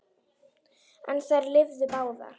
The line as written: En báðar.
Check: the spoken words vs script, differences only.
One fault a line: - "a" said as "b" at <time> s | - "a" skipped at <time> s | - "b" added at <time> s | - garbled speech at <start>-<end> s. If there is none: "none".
- "þær lifðu" added at 1.3 s